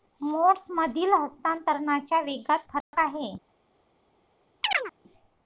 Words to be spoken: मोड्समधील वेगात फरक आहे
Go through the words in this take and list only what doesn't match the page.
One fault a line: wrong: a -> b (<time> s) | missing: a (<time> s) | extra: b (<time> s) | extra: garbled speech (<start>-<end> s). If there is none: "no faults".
extra: हस्तांतरणाच्या (1.1 s)